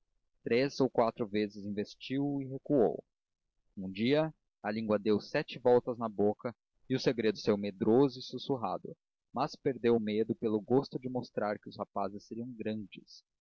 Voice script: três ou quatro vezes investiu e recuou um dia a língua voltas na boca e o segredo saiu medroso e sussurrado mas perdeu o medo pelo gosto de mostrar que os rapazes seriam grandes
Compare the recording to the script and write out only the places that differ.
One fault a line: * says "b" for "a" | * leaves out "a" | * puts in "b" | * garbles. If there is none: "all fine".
* puts in "deu sete"